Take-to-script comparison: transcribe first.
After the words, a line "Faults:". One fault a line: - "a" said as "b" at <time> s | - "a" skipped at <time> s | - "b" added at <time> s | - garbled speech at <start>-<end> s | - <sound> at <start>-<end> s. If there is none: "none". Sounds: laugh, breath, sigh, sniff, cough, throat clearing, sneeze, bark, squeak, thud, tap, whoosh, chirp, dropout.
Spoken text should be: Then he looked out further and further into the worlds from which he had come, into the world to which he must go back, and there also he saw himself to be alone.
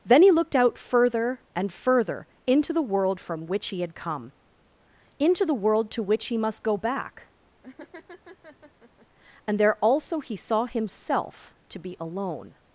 Then he looked out further and further into the world from which he had come, into the world to which he must go back, and there also he saw himself to be alone.
Faults:
- "worlds" said as "world" at 2.8 s
- laugh at 7.6-9.1 s